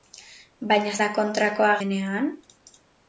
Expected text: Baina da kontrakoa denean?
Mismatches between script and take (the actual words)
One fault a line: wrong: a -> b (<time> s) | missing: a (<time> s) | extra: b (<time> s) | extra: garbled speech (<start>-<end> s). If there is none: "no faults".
no faults